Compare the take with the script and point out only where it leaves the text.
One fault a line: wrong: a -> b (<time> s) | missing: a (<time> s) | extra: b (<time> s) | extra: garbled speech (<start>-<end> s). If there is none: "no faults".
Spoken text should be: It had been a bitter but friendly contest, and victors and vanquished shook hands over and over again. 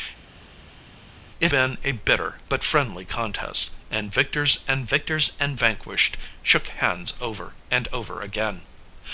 missing: had (1.5 s)
extra: victors and (4.9 s)